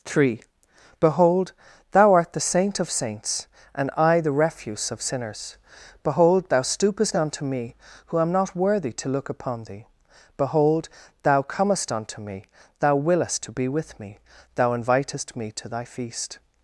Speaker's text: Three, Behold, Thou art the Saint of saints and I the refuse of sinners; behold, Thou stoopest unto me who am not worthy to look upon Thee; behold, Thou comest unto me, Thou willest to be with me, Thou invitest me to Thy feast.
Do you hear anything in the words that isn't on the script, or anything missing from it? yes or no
no